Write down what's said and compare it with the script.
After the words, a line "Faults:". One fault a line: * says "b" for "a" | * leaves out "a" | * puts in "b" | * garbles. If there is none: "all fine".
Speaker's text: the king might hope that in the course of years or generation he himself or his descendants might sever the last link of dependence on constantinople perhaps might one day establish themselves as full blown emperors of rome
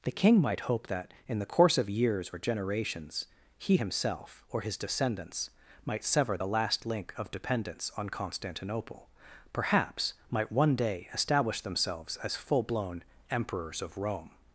the king might hope that in the course of years or generations he himself or his descendants might sever the last link of dependence on constantinople perhaps might one day establish themselves as full blown emperors of rome
Faults:
* says "generations" for "generation"